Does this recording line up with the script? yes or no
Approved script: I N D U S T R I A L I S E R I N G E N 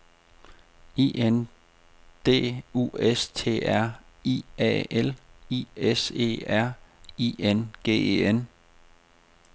yes